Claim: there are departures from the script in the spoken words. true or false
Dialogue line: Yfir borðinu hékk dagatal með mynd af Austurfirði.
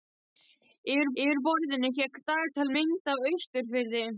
true